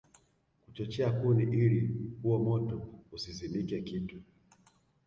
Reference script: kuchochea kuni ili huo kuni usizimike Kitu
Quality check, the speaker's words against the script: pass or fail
fail